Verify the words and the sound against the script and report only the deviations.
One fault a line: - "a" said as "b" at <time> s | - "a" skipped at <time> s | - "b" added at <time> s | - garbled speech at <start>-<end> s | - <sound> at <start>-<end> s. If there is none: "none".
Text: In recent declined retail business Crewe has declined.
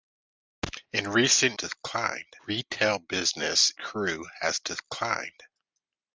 none